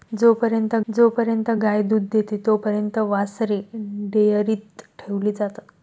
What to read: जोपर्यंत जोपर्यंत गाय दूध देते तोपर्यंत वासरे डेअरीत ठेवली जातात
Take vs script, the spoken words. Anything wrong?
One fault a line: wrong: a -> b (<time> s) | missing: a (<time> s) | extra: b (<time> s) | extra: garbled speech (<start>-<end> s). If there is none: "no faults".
no faults